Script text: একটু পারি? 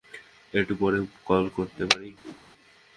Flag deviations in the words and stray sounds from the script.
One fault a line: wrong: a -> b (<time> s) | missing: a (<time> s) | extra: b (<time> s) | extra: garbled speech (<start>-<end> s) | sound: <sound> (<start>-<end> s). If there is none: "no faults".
extra: পরে কল করতে (0.8 s)
sound: whoosh (2.2-2.4 s)